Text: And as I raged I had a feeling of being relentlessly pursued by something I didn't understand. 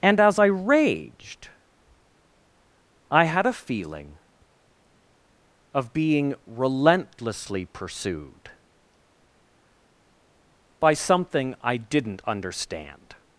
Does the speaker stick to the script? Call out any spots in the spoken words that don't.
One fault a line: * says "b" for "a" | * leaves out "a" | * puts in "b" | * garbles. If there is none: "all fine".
all fine